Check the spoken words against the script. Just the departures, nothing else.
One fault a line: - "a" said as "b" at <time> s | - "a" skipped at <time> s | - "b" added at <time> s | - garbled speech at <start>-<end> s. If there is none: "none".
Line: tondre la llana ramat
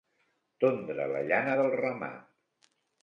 - "del" added at 1.6 s